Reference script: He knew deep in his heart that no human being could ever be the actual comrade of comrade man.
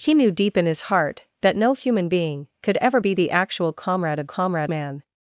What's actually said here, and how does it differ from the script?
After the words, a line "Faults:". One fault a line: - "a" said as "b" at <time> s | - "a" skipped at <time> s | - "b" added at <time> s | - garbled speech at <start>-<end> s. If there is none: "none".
He knew deep in his heart that no human being could ever be the actual comrade of comrade man.
Faults:
none